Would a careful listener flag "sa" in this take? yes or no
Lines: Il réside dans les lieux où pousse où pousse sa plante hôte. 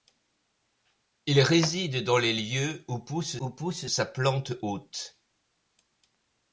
no